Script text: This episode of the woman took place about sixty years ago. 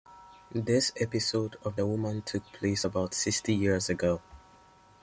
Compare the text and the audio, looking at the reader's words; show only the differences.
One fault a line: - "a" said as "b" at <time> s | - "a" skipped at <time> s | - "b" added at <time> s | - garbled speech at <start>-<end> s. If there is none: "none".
none